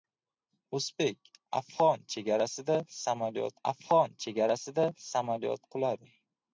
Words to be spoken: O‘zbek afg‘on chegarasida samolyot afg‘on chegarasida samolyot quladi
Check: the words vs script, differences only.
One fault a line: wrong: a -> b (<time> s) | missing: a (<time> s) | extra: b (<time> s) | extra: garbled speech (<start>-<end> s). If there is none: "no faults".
no faults